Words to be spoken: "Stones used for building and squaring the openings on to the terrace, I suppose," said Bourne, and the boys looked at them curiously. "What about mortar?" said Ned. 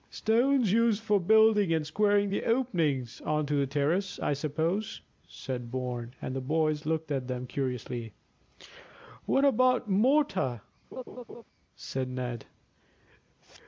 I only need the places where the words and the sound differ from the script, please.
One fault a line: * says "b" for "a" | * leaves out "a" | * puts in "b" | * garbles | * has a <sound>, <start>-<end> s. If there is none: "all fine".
* has a laugh, 10.9-11.4 s